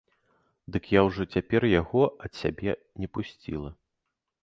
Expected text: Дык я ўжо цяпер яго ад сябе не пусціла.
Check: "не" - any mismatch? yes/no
no